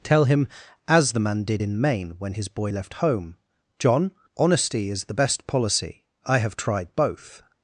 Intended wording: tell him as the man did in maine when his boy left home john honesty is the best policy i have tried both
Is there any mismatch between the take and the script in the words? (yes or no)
no